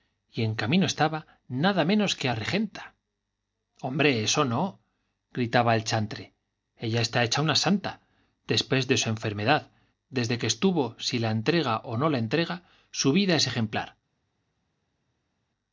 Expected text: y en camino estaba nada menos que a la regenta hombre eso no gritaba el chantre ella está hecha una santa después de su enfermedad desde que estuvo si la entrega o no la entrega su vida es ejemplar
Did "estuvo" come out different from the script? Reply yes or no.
no